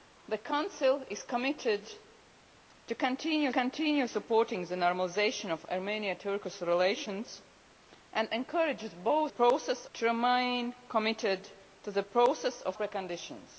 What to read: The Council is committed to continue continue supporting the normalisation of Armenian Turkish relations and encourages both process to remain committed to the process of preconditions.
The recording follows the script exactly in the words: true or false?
true